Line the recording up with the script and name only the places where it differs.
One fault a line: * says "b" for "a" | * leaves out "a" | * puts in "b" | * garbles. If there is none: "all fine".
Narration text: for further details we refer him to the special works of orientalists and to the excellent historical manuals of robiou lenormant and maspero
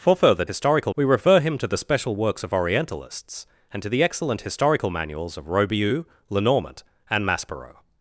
* says "historical" for "details"